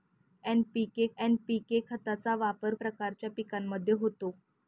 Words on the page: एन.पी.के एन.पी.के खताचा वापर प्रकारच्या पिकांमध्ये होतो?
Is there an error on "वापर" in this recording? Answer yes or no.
no